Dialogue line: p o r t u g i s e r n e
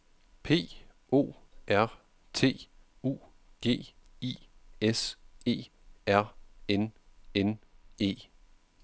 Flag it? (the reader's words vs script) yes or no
yes